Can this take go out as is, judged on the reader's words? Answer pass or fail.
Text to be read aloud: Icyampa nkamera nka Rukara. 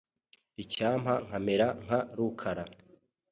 pass